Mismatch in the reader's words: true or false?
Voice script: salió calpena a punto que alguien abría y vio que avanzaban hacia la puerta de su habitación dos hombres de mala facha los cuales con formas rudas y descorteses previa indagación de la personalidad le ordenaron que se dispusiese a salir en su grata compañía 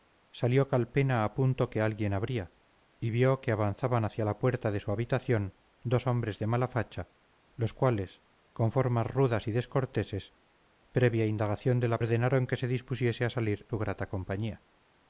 true